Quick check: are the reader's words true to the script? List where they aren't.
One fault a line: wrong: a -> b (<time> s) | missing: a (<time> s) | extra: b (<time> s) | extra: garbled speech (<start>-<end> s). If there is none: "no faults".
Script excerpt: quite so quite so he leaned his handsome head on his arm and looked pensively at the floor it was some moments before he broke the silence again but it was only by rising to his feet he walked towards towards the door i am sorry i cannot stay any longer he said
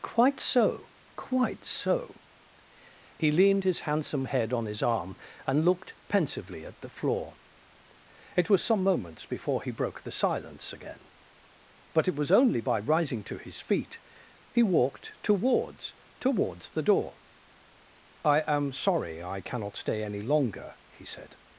no faults